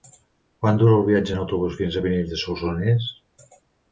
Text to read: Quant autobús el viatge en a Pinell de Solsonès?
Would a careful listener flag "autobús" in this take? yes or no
yes